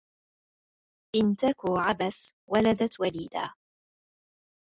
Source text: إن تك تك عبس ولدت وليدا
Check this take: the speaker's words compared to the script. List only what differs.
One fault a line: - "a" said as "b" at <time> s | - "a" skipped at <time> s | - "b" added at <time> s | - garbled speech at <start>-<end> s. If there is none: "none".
- "تك" skipped at 1.6 s